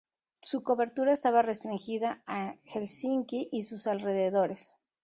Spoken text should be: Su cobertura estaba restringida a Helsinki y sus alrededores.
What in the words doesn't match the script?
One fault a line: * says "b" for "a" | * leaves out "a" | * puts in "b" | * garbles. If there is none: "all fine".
all fine